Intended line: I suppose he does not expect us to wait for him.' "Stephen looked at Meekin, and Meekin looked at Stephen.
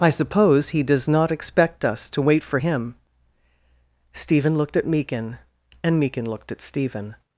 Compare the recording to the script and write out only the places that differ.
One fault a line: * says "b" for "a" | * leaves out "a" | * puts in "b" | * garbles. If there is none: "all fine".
all fine